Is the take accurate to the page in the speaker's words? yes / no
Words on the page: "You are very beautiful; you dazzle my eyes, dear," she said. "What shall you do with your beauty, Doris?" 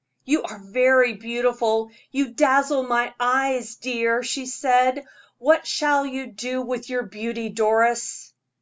yes